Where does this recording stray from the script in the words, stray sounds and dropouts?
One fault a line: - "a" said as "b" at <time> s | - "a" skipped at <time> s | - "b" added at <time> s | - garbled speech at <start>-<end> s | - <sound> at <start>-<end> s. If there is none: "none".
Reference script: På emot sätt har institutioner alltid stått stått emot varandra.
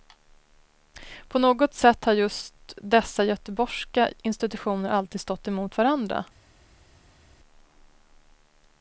- "emot" said as "något" at 1.4 s
- "just dessa göteborgska" added at 2.1 s
- "stått" skipped at 5.5 s